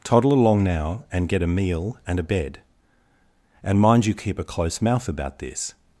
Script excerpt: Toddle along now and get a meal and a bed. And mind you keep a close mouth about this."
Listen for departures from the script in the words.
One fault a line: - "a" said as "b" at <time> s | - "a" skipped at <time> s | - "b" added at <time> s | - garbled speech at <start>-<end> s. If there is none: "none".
none